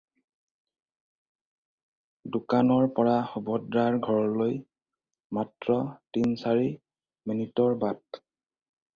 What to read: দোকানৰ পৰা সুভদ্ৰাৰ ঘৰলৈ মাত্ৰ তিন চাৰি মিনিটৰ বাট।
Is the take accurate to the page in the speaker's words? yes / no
yes